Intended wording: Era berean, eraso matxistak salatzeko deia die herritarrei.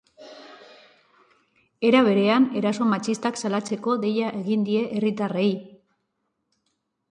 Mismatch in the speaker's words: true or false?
true